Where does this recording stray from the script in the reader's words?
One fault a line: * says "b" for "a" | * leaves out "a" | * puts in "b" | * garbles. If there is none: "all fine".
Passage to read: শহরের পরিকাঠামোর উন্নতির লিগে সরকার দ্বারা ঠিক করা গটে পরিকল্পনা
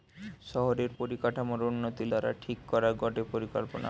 * leaves out "লিগে সরকার"